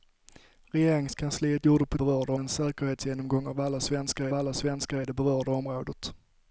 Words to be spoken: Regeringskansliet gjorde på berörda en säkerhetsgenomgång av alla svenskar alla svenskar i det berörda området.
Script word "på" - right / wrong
right